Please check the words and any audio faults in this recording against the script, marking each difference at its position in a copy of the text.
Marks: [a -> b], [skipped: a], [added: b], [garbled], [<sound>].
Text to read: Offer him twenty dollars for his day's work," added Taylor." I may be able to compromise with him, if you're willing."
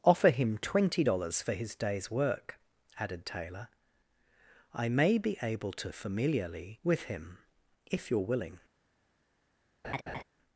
Offer him twenty dollars for his day's work," added Taylor." I may be able to [compromise -> familiarly] with him, if you're willing." [laugh]